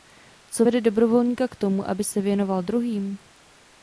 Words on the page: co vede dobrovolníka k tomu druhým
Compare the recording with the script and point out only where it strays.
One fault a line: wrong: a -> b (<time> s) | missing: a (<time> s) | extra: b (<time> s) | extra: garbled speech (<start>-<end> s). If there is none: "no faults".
extra: aby se věnoval (1.9 s)